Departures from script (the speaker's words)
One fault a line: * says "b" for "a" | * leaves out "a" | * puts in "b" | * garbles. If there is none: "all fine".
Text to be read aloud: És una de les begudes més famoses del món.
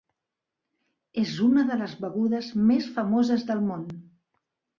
all fine